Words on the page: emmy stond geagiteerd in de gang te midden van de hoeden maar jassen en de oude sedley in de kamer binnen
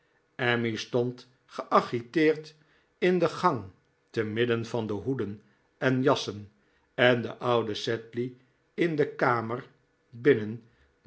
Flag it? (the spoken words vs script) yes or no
yes